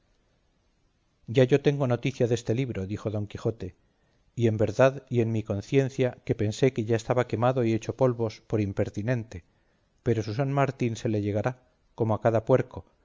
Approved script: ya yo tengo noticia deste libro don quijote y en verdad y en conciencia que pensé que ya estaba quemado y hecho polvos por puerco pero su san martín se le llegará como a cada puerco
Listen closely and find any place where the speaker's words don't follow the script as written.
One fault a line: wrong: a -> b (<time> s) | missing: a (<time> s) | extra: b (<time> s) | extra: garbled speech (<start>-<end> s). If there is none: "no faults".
extra: dijo (2.9 s)
extra: mi (5.3 s)
wrong: puerco -> impertinente (8.6 s)